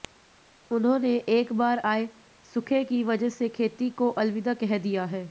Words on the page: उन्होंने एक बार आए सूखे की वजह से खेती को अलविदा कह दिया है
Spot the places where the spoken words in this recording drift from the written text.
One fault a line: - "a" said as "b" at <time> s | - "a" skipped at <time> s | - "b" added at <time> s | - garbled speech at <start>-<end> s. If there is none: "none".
none